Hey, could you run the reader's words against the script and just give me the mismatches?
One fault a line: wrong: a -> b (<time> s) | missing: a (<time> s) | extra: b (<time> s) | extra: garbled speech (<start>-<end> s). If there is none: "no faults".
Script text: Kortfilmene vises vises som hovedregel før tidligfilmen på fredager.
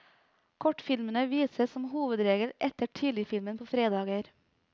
missing: vises (1.8 s)
wrong: før -> etter (2.7 s)